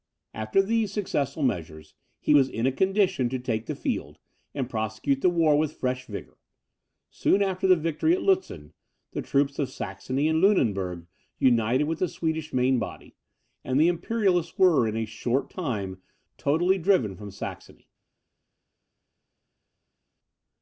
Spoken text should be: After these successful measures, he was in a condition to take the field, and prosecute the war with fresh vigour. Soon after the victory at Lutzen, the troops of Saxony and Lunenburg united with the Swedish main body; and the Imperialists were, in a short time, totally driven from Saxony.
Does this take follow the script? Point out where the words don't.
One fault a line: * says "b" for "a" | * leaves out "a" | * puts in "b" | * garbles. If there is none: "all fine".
all fine